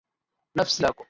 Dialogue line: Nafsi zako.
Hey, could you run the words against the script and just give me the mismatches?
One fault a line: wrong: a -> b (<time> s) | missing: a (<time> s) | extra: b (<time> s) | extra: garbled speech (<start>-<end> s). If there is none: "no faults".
no faults